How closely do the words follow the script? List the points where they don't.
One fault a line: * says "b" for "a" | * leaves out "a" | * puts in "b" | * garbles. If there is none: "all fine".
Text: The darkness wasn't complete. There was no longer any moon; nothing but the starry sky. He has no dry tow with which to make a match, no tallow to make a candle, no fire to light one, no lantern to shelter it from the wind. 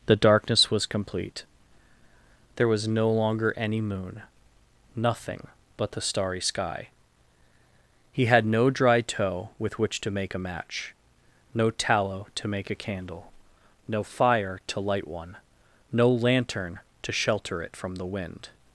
* says "was" for "wasn't"
* says "had" for "has"